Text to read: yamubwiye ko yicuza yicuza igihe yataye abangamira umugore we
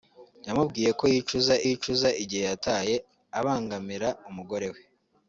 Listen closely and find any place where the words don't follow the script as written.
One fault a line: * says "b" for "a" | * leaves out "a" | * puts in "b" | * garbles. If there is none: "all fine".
all fine